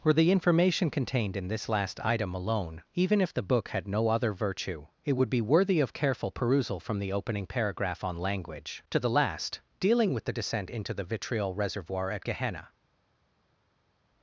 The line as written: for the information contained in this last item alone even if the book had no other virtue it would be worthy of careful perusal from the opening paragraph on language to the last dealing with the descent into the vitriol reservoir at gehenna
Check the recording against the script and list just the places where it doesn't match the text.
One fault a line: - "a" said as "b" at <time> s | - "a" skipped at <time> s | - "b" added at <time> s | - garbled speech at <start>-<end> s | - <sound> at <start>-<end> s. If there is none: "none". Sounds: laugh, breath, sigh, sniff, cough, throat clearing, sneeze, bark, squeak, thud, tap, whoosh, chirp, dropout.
- "for" said as "were" at 0.0 s